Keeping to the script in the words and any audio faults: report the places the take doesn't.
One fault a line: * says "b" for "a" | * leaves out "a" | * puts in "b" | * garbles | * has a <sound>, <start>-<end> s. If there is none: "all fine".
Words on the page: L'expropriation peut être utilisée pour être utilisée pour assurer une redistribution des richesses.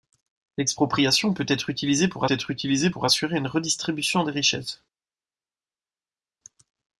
all fine